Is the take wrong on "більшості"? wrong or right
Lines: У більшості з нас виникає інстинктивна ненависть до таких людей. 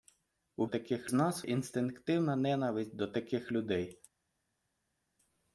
wrong